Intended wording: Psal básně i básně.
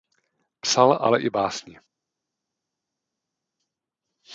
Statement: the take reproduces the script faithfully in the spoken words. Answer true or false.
false